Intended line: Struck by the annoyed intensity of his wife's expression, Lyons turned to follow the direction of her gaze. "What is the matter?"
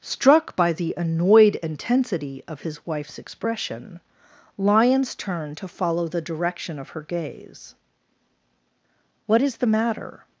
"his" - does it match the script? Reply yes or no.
yes